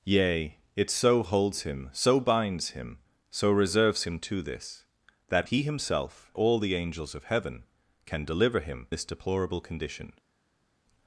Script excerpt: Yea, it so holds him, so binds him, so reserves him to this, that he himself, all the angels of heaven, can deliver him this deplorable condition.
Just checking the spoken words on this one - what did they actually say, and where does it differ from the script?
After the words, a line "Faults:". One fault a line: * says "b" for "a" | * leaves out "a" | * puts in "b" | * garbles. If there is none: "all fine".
Yea, it so holds him, so binds him, so reserves him to this, that he himself, all the angels of heaven, can deliver him this deplorable condition.
Faults:
all fine